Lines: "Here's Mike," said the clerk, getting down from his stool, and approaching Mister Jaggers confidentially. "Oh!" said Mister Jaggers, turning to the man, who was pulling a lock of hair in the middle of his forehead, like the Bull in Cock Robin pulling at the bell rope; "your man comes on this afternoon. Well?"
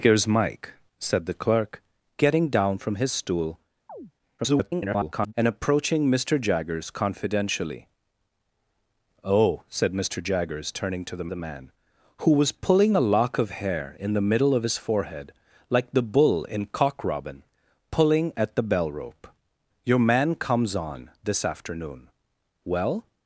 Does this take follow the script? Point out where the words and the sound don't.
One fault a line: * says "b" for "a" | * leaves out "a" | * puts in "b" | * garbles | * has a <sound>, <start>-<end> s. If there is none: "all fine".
* has a chirp, 3.9-4.1 s
* garbles
* puts in "the"